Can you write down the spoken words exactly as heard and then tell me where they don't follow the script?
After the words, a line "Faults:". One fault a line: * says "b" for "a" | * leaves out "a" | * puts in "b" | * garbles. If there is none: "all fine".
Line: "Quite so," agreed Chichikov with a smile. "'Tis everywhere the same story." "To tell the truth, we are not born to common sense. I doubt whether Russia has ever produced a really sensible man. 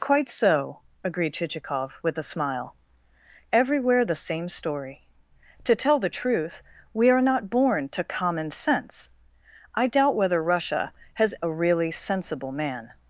"Quite so," agreed Chichikov with a smile. "'Everywhere the same story." "To tell the truth, we are not born to common sense. I doubt whether Russia has a really sensible man.
Faults:
* leaves out "Tis"
* leaves out "ever produced"